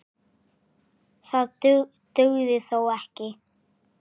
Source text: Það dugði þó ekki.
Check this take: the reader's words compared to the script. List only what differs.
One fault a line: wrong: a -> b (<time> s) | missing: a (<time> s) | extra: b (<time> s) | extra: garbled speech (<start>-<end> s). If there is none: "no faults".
no faults